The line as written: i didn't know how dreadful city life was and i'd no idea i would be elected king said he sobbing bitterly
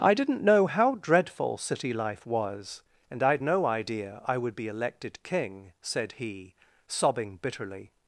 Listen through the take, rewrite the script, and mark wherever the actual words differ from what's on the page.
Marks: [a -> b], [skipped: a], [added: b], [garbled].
i didn't know how dreadful city life was and i'd no idea i would be elected king said he sobbing bitterly